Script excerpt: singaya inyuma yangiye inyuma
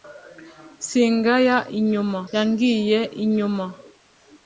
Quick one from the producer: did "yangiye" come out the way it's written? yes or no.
yes